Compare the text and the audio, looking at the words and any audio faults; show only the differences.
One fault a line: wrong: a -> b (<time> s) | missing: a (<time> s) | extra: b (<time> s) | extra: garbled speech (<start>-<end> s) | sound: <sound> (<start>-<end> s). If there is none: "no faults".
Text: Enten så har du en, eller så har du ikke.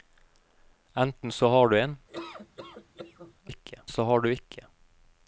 sound: laugh (2.1-3.3 s)
wrong: eller -> ikke (3.5 s)